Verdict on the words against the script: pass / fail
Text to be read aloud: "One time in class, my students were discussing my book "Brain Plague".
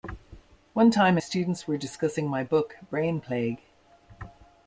fail